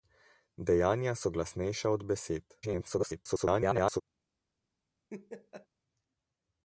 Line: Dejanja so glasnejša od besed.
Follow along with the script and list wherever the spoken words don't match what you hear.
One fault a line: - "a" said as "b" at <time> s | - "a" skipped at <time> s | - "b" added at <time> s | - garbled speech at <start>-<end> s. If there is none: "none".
- garbled speech at 2.6-4.0 s